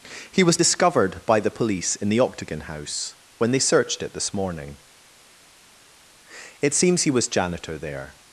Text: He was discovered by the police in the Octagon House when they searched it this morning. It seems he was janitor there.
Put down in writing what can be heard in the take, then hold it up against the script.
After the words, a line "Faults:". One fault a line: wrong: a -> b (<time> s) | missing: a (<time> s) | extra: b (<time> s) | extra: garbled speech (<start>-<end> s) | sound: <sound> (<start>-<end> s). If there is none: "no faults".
He was discovered by the police in the Octagon House when they searched it this morning. It seems he was janitor there.
Faults:
no faults